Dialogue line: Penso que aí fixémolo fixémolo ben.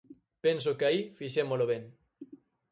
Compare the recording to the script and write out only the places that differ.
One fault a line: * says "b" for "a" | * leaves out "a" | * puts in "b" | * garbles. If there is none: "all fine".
* leaves out "fixémolo"